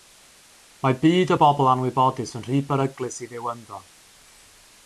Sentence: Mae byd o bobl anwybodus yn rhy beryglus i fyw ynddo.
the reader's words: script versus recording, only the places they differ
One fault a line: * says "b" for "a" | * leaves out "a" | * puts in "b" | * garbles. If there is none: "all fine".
all fine